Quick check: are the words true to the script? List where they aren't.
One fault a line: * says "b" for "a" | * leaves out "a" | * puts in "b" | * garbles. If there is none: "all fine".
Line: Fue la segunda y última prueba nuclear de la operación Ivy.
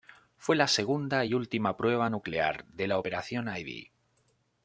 all fine